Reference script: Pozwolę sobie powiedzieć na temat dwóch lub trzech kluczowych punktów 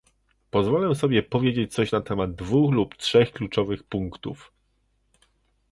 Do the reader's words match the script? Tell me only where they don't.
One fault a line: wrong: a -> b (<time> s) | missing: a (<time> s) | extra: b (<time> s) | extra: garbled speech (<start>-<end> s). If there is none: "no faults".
extra: coś (1.7 s)